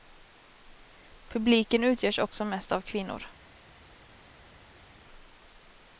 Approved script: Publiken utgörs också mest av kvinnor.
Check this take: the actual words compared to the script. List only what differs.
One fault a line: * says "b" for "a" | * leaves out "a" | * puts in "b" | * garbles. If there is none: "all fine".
all fine